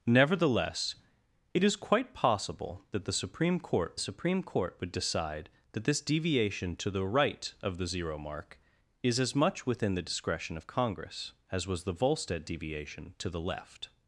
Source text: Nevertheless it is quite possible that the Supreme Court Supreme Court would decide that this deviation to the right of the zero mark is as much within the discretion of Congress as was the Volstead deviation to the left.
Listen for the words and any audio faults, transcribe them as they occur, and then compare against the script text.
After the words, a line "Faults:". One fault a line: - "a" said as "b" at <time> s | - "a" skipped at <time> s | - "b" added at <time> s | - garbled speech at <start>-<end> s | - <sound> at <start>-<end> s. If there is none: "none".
Nevertheless it is quite possible that the Supreme Court Supreme Court would decide that this deviation to the right of the zero mark is as much within the discretion of Congress as was the Volstead deviation to the left.
Faults:
none